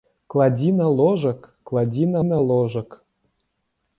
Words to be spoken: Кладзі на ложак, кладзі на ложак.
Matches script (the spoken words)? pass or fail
fail